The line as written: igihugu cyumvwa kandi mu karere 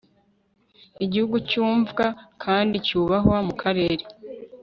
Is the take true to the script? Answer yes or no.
no